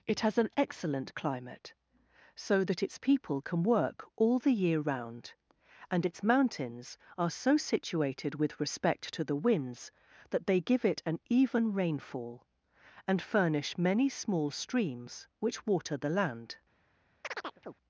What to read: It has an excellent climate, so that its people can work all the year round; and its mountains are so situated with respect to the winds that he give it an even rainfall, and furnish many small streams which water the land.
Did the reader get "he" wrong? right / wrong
wrong